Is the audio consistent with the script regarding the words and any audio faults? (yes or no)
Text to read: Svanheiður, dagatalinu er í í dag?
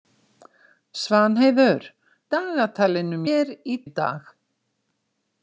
yes